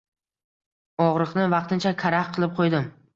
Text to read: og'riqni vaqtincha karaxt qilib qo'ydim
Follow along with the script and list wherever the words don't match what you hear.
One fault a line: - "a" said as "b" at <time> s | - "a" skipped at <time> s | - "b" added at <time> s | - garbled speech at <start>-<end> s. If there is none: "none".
none